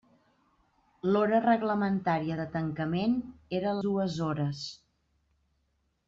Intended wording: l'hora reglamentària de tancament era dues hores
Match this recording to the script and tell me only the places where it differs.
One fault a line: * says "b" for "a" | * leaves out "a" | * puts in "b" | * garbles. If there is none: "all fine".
all fine